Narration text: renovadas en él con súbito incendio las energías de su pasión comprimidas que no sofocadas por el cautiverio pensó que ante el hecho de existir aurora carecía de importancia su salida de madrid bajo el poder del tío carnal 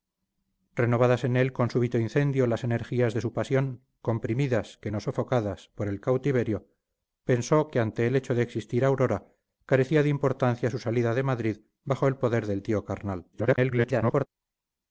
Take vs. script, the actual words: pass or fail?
fail